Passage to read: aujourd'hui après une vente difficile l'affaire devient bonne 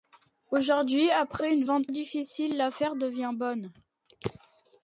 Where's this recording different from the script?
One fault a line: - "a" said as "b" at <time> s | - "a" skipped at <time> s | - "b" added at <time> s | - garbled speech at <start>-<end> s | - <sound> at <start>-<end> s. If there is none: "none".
none